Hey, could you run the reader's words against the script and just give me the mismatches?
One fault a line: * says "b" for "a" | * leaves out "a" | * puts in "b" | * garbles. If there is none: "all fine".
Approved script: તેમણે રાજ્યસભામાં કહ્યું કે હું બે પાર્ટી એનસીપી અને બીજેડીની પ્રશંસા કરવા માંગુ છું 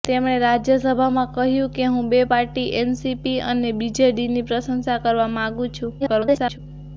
* garbles